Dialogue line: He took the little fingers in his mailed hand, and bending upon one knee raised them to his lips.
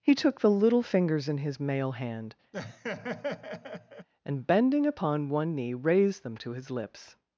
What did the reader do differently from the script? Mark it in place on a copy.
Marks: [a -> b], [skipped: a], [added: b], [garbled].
He took the little fingers in his [mailed -> mail] hand, and bending upon one knee raised them to his lips.